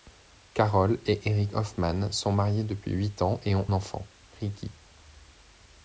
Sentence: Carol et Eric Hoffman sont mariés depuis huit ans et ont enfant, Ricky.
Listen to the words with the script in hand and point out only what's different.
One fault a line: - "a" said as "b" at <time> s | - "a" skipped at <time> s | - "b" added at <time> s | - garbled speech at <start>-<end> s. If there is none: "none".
none